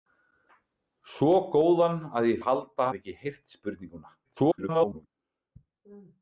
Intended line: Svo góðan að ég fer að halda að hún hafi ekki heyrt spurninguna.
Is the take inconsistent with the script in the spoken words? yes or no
yes